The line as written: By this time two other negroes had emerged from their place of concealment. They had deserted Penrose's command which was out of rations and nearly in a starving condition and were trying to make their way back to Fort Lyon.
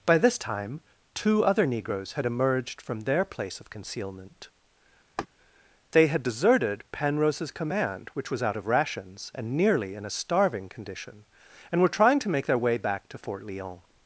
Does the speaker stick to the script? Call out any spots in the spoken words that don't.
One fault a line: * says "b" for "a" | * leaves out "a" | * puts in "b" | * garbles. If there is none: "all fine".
all fine